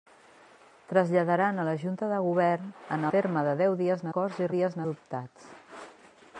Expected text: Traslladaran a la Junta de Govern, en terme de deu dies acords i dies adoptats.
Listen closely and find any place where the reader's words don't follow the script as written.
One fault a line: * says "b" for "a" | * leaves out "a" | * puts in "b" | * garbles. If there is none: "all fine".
all fine